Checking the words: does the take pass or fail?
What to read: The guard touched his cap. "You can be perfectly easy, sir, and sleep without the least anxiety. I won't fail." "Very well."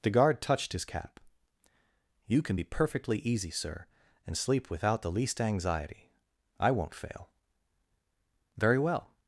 pass